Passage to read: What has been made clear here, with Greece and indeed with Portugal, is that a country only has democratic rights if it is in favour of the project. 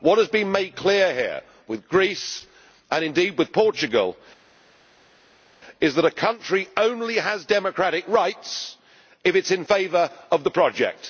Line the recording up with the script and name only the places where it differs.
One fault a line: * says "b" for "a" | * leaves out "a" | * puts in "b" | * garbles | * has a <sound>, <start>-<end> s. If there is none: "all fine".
all fine